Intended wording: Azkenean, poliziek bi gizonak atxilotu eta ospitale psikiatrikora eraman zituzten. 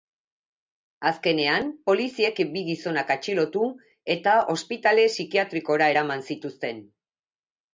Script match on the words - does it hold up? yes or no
yes